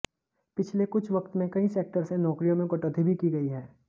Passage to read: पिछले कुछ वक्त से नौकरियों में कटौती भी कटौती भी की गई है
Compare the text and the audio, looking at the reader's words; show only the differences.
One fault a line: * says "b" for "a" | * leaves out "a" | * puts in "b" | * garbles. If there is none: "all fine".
* puts in "में कई सेक्टर"
* leaves out "कटौती भी"